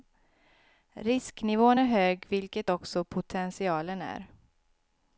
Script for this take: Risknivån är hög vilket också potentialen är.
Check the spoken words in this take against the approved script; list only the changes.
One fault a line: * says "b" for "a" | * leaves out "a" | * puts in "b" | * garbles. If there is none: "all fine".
all fine